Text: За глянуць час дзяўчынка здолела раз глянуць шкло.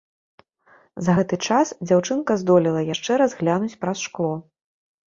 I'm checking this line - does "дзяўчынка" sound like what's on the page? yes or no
yes